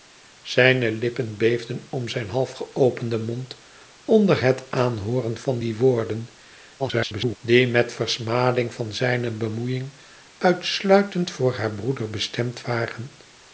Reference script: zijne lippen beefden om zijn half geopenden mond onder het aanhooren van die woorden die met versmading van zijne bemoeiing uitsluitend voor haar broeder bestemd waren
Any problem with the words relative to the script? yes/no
yes